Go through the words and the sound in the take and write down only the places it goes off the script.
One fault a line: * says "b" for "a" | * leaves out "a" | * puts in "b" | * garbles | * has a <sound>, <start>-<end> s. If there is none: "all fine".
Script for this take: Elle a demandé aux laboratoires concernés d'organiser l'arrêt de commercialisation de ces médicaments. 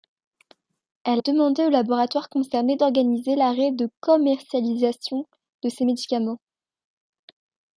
* leaves out "a"